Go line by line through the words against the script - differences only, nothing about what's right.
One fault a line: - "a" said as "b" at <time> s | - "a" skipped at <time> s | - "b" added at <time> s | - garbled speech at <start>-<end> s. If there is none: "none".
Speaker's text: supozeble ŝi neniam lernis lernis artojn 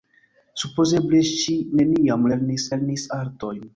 none